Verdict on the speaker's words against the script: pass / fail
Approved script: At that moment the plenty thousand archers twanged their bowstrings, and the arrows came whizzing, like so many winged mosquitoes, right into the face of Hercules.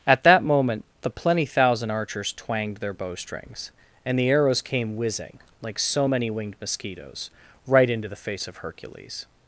pass